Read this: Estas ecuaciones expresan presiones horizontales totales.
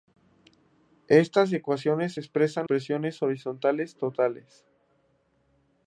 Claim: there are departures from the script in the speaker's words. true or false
false